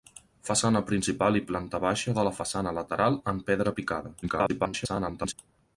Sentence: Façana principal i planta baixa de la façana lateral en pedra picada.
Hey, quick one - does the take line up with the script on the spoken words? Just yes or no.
no